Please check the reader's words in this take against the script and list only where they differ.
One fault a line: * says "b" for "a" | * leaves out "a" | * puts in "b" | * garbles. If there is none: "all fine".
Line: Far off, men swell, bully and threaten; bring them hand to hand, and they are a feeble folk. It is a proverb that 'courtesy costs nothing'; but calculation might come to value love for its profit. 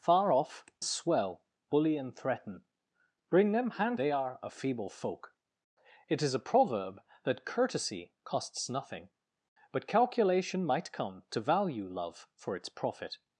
* leaves out "men"
* leaves out "to hand and"